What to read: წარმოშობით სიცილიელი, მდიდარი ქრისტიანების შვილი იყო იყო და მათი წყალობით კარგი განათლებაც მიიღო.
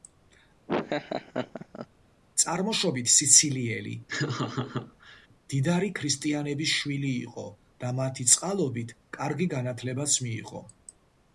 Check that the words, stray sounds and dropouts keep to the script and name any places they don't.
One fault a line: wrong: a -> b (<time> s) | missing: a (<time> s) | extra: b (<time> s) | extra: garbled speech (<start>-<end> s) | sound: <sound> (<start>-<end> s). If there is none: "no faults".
sound: laugh (0.7-1.9 s)
sound: laugh (4.1-5.3 s)
missing: იყო (7.5 s)